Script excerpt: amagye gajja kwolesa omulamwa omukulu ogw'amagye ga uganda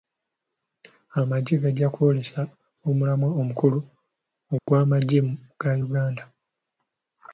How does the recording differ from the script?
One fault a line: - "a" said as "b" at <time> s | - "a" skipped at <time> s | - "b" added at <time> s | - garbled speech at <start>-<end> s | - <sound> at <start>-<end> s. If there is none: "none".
- dropout at 4.6-4.7 s